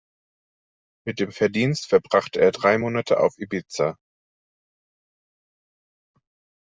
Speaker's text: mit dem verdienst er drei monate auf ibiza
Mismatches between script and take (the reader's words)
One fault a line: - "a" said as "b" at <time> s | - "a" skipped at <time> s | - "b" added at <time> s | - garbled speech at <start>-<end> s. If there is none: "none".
- "verbrachte" added at 1.9 s